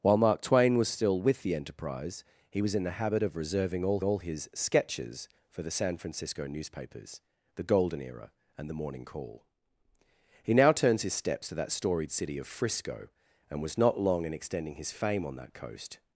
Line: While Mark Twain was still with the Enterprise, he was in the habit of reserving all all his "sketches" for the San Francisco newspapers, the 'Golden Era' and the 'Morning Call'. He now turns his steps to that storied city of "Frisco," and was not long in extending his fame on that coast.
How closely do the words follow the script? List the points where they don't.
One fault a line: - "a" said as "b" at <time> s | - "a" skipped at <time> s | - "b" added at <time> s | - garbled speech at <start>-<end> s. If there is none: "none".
none